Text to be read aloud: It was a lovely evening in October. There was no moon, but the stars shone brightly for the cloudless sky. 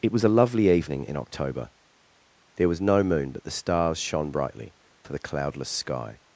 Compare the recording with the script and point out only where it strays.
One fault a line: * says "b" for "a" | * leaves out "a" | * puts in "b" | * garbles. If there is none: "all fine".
all fine